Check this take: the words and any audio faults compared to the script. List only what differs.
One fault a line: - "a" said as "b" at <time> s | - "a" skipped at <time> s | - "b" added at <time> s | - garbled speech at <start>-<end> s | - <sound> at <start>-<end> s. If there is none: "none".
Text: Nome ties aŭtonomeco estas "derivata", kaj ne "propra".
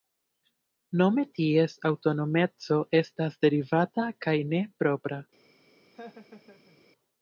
- laugh at 5.9-6.8 s